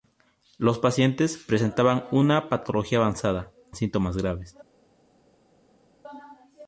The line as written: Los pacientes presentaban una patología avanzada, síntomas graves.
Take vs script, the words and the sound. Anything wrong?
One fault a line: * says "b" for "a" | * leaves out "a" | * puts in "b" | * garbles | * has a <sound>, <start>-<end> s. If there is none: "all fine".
all fine